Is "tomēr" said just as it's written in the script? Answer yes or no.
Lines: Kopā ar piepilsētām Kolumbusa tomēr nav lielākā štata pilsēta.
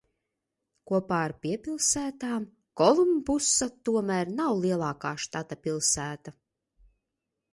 yes